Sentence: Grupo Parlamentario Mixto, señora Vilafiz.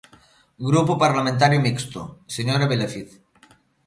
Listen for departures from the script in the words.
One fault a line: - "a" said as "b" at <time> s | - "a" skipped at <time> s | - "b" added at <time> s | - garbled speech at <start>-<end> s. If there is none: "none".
none